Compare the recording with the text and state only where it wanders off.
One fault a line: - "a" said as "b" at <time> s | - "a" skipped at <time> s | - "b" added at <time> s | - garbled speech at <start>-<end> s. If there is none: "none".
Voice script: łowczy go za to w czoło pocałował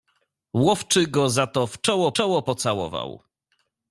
- "czoło" added at 2.1 s